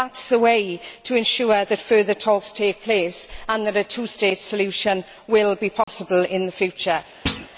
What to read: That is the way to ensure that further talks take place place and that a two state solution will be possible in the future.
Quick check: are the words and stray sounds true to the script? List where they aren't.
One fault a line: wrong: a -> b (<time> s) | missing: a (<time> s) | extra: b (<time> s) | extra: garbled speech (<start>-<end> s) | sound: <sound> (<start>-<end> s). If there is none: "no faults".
missing: place (3.3 s)
sound: dropout (5.8-5.9 s)
sound: thud (7.3-7.5 s)